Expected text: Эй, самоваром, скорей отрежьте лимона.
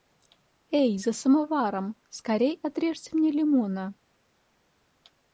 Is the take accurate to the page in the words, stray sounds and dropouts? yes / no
no